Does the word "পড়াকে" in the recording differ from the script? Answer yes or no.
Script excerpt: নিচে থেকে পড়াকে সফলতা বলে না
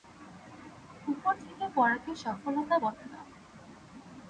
no